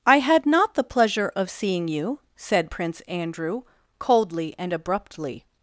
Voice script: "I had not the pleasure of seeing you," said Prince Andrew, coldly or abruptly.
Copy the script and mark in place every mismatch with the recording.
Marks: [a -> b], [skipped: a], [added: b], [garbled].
"I had not the pleasure of seeing you," said Prince Andrew, coldly [or -> and] abruptly.